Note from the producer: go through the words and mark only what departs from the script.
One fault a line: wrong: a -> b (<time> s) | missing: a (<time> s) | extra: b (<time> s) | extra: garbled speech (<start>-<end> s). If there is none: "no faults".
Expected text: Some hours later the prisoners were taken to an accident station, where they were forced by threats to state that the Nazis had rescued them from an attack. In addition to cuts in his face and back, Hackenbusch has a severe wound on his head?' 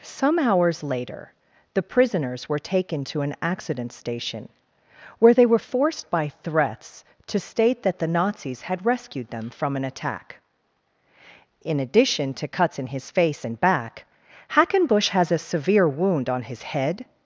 no faults